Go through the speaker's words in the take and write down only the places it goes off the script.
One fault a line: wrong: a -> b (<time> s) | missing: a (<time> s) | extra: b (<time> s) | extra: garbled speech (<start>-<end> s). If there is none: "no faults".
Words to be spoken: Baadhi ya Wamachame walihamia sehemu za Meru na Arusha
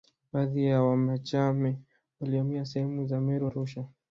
missing: na (3.5 s)